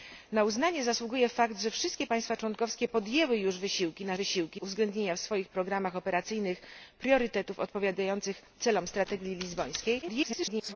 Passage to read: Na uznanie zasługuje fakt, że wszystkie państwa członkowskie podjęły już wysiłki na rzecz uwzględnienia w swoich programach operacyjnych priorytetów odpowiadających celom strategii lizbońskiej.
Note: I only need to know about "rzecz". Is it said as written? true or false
false